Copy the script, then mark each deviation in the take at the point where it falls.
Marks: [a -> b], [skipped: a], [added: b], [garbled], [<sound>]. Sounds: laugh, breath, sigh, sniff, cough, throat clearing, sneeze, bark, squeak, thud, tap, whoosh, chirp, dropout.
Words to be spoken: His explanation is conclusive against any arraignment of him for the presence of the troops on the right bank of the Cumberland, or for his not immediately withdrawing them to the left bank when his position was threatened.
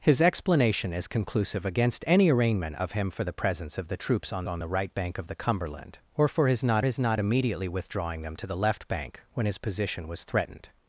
His explanation is conclusive against any arraignment of him for the presence of the troops on [added: on] the right bank of the Cumberland, or for his not [added: his not] immediately withdrawing them to the left bank when his position was threatened.